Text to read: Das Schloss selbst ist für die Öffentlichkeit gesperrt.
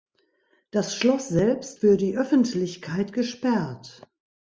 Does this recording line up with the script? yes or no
no